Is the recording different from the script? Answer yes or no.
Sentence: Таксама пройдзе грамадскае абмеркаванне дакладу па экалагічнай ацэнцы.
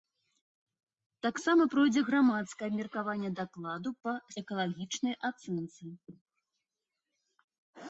no